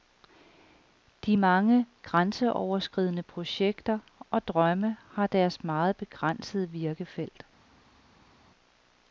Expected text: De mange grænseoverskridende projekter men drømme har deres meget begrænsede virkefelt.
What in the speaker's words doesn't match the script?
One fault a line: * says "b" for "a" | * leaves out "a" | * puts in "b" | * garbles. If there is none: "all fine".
* says "og" for "men"